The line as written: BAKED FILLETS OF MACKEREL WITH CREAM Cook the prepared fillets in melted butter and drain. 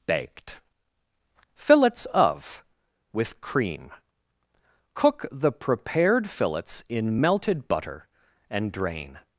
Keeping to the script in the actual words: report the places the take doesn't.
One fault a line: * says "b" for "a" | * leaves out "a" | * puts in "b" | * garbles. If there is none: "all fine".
* leaves out "MACKEREL"